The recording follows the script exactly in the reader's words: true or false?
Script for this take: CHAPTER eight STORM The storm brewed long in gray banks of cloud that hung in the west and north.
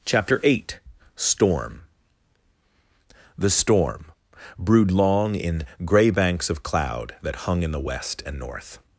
true